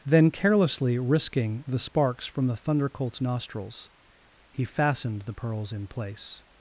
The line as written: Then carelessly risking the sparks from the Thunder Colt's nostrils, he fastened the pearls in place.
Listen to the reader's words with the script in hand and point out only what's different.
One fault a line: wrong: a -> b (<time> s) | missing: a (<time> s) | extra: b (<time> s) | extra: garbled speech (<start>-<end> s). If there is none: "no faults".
no faults